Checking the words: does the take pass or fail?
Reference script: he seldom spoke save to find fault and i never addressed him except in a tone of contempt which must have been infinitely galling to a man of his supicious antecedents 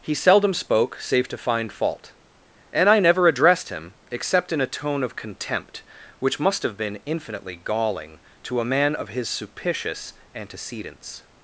pass